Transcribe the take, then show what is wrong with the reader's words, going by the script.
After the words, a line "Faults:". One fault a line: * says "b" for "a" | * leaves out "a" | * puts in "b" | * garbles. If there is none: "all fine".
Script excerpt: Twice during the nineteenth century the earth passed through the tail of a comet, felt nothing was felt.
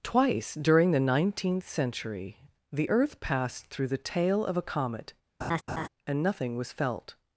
Twice during the nineteenth century the earth passed through the tail of a comet, and nothing was felt.
Faults:
* says "and" for "felt"